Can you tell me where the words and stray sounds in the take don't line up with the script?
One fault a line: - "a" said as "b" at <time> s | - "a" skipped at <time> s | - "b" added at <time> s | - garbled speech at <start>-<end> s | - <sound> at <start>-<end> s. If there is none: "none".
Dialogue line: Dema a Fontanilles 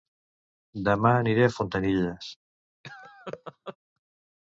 - "aniré" added at 1.2 s
- laugh at 2.8-3.8 s